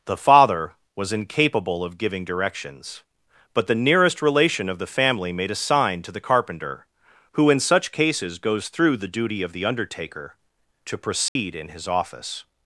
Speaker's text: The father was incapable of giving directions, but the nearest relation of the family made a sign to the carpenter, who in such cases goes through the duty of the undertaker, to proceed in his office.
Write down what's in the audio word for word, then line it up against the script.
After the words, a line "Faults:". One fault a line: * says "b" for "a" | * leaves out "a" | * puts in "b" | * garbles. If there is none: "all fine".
The father was incapable of giving directions, but the nearest relation of the family made a sign to the carpenter, who in such cases goes through the duty of the undertaker, to proceed in his office.
Faults:
all fine